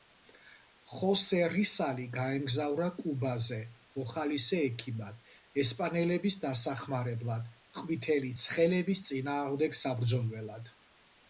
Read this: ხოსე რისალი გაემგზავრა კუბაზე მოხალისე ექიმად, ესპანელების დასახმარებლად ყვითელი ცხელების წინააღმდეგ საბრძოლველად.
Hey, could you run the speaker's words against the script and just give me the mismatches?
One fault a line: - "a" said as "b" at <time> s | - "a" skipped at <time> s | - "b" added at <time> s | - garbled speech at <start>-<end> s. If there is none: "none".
none